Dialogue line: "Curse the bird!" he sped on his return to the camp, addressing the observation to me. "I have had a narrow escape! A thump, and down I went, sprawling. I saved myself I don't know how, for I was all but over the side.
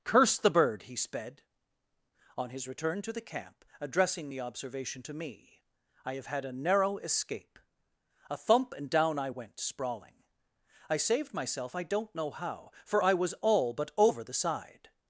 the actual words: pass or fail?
pass